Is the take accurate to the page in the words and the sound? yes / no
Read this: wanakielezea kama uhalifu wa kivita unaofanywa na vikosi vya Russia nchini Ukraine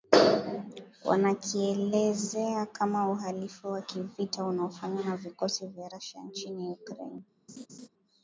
no